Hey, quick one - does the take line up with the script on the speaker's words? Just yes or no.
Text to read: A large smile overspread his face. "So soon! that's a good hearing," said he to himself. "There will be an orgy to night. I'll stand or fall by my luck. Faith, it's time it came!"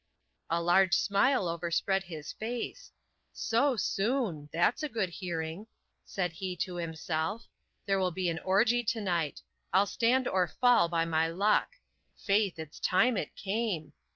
yes